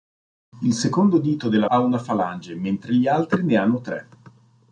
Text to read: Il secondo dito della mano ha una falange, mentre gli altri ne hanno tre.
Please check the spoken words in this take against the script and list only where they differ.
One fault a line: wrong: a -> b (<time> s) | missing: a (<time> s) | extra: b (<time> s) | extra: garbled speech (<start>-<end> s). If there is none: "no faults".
missing: mano (1.7 s)